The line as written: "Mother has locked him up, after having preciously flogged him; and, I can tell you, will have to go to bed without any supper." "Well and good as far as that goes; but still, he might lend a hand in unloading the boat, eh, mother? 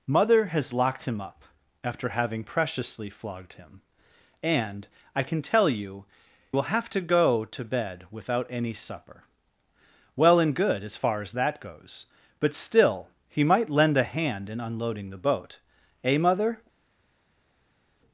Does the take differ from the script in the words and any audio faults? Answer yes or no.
no